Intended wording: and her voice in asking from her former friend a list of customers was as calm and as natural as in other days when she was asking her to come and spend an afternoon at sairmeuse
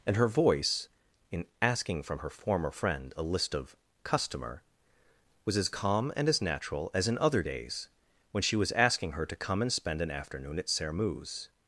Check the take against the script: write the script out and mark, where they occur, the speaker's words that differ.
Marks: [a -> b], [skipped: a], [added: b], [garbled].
and her voice in asking from her former friend a list of [customers -> customer] was as calm and as natural as in other days when she was asking her to come and spend an afternoon at sairmeuse